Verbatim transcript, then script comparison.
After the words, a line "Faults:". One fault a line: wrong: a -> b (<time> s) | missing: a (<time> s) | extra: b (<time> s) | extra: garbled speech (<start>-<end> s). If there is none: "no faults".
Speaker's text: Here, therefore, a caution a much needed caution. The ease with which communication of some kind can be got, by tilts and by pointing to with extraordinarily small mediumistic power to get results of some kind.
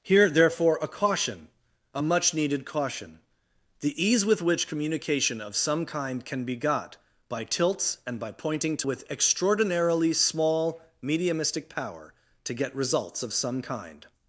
Here, therefore, a caution a much needed caution. The ease with which communication of some kind can be got, by tilts and by pointing to with extraordinarily small mediumistic power to get results of some kind.
Faults:
no faults